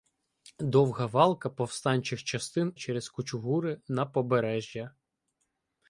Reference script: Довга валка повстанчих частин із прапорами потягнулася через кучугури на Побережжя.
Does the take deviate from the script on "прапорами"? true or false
true